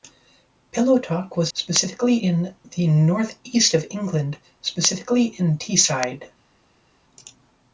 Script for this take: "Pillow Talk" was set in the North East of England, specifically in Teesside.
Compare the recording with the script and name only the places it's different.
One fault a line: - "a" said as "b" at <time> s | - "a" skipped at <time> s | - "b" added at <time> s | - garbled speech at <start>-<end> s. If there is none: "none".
- "set" said as "specifically" at 1.5 s